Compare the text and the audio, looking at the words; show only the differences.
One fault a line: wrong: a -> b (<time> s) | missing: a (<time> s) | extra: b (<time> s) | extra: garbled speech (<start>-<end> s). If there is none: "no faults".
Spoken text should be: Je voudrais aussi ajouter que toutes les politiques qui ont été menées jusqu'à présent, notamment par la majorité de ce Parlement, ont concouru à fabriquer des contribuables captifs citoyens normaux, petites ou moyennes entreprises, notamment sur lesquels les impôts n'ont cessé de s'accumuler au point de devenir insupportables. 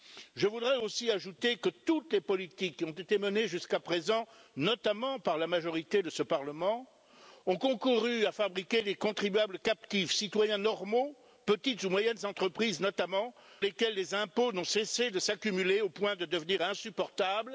missing: sur (13.3 s)